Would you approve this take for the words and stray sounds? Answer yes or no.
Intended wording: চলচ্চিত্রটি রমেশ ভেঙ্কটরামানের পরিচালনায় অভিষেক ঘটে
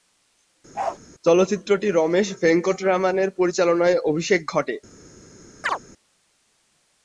no